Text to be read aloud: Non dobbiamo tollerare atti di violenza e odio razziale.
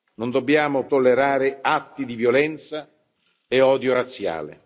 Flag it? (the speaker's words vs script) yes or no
no